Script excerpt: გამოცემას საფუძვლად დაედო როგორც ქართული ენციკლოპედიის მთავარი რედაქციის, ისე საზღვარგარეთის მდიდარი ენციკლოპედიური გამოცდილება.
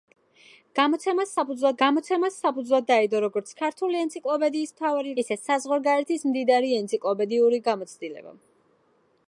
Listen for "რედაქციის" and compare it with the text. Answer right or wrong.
wrong